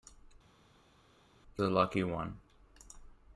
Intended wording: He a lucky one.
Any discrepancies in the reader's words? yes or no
no